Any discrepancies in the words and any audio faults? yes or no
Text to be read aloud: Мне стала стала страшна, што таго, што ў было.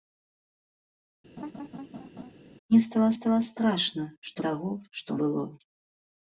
yes